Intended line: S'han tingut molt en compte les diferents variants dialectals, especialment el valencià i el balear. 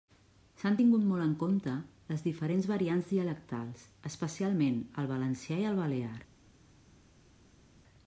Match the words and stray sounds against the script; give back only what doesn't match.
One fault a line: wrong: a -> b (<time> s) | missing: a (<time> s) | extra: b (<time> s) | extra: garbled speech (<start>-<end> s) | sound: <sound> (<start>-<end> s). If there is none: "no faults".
no faults